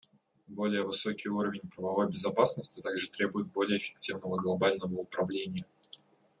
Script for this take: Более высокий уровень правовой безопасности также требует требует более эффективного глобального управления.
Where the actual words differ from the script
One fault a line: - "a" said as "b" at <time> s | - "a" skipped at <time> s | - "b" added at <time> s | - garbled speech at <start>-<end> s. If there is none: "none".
- "требует" skipped at 3.5 s